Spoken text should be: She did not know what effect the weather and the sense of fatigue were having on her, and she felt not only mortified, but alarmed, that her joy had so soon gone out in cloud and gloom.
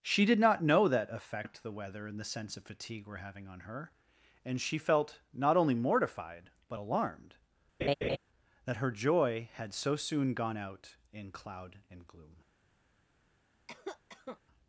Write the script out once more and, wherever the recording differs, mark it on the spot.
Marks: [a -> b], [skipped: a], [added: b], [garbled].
She did not know [what -> that] effect the weather and the sense of fatigue were having on her, and she felt not only mortified, but alarmed, that her joy had so soon gone out in cloud and gloom.